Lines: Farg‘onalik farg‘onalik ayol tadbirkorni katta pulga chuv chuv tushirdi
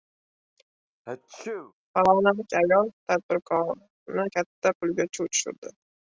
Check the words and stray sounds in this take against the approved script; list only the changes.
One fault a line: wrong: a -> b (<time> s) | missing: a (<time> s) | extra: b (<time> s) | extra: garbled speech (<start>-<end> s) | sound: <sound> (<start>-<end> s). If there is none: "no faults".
sound: sneeze (1.1-1.7 s)
missing: farg‘onalik (2.6 s)
missing: chuv (5.3 s)